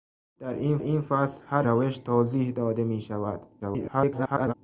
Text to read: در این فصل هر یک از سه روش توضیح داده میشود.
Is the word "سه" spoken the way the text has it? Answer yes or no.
no